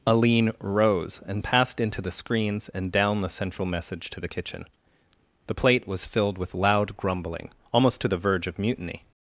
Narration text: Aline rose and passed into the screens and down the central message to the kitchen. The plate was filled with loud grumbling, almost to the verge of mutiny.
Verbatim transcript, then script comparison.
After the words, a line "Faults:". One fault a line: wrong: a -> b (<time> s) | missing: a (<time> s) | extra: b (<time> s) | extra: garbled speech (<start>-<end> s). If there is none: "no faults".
Aline rose and passed into the screens and down the central message to the kitchen. The plate was filled with loud grumbling, almost to the verge of mutiny.
Faults:
no faults